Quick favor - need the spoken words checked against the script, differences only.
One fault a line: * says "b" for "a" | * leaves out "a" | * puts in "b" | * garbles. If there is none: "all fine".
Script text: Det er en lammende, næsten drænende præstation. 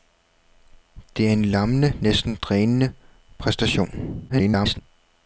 * garbles